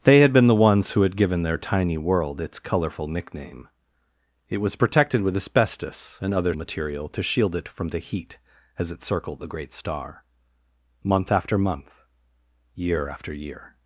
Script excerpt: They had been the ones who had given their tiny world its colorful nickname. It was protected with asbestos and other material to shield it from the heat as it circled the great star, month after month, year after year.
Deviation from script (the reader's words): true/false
false